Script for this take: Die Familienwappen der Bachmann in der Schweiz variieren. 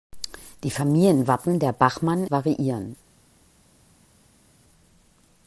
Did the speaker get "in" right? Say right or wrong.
wrong